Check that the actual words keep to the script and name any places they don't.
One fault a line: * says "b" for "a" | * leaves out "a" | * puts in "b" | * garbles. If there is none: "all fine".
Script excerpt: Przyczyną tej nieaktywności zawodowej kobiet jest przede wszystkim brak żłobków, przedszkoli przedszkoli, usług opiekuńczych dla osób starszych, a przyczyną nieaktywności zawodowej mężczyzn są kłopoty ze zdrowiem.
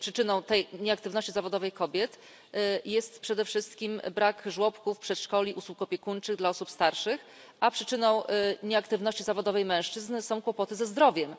* leaves out "przedszkoli"